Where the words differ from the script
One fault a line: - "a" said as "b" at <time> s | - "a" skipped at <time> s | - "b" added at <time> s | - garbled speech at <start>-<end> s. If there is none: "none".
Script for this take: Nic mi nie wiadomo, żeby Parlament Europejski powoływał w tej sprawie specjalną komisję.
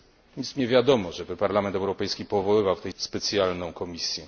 - "sprawie" skipped at 2.9 s